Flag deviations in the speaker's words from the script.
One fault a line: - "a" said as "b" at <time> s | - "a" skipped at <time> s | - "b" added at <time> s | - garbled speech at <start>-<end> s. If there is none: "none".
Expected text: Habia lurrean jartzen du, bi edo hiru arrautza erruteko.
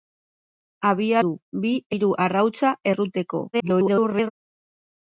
- "lurrean jartzen" skipped at 1.2 s
- "edo" skipped at 1.7 s
- garbled speech at 3.5-4.3 s